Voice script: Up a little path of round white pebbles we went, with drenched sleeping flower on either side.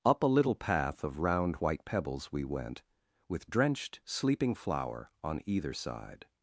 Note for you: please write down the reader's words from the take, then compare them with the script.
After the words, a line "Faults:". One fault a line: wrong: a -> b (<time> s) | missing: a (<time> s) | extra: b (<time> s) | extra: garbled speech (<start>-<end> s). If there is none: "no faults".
Up a little path of round white pebbles we went, with drenched sleeping flower on either side.
Faults:
no faults